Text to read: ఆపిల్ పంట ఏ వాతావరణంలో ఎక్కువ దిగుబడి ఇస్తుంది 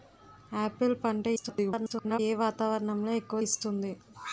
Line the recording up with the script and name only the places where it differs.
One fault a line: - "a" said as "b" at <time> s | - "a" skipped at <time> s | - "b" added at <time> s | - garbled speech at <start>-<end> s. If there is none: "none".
- garbled speech at 1.4-2.2 s
- "దిగుబడి" skipped at 3.4 s